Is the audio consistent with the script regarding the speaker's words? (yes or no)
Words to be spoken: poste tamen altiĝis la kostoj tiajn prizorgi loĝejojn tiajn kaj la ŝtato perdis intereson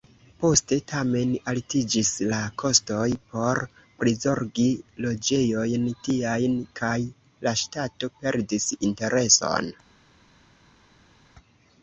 no